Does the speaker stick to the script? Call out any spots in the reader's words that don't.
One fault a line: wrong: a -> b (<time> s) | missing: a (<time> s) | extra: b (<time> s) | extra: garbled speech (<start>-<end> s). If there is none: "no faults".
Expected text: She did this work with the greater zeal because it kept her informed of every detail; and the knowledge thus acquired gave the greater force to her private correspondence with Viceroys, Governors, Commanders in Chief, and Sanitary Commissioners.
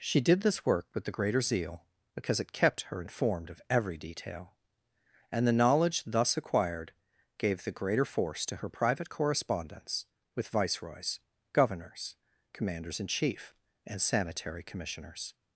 no faults